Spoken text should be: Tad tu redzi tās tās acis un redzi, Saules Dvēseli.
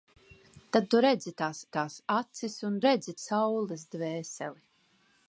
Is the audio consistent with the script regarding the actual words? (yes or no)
yes